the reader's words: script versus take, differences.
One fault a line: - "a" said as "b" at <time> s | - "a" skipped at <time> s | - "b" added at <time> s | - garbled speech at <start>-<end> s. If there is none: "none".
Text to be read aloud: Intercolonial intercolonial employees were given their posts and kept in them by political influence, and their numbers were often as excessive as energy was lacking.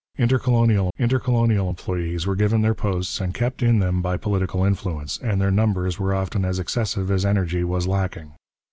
none